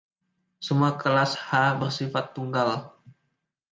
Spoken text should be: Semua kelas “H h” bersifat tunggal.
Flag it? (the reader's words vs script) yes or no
yes